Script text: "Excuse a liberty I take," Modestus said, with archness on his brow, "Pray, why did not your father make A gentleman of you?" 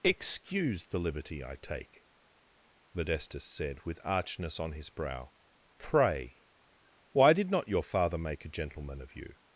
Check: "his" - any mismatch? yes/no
no